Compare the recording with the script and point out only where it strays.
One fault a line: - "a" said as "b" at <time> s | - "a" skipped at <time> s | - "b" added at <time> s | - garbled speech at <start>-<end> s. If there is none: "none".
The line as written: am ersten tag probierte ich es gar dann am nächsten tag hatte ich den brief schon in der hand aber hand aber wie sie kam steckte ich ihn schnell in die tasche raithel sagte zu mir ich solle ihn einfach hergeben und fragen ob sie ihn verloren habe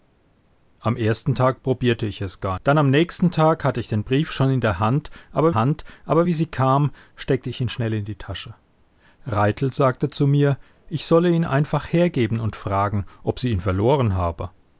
none